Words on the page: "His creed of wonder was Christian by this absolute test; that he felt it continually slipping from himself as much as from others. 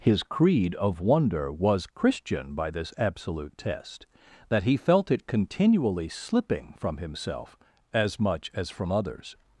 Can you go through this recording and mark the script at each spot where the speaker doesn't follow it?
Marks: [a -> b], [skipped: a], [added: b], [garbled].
"His creed of wonder was Christian by this absolute test; that he felt it continually slipping from himself as much as from others.